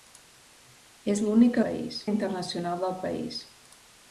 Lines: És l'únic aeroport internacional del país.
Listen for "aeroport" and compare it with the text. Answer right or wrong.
wrong